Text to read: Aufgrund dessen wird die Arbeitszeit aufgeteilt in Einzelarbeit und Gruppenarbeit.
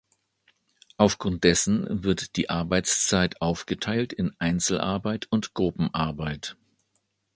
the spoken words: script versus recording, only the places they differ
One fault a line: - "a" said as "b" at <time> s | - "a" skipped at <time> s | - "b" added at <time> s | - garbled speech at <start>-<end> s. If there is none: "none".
none